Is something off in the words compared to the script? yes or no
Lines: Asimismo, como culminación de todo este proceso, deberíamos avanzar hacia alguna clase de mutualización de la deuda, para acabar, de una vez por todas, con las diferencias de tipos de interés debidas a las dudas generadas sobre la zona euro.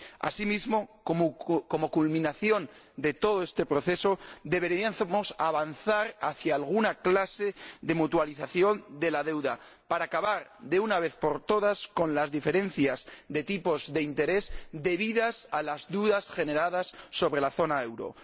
no